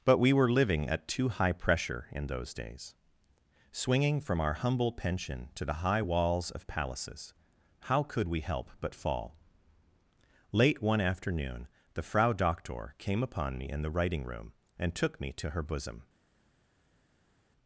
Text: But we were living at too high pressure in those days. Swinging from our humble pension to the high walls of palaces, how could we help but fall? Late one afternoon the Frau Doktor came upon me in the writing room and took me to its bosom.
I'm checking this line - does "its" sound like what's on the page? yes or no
no